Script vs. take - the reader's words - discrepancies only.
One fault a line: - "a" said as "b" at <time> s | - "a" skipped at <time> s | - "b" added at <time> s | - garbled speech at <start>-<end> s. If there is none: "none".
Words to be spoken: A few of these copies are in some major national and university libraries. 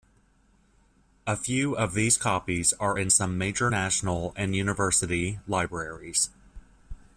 none